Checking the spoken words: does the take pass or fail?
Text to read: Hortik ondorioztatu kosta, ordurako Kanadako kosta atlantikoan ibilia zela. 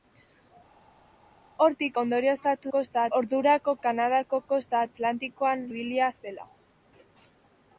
pass